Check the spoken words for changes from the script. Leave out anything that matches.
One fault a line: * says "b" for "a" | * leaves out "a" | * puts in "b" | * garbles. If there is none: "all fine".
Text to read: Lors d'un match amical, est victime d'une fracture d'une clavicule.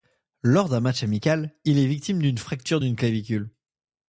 * puts in "il"